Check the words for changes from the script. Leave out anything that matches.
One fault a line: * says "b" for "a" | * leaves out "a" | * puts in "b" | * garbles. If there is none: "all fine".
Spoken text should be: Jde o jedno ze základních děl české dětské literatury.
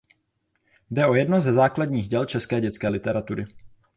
all fine